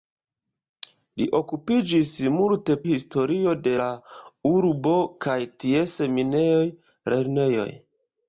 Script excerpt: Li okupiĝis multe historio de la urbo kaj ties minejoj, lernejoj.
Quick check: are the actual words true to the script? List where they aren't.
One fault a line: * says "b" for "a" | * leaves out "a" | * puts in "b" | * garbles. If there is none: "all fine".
all fine